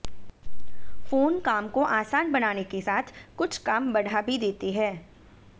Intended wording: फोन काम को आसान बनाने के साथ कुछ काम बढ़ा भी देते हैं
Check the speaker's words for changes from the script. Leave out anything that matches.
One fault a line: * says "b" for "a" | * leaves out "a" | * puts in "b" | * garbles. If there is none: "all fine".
all fine